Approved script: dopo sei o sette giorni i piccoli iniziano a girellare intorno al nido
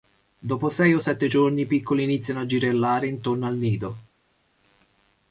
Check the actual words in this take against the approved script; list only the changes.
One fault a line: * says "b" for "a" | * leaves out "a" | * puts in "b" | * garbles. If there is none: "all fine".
all fine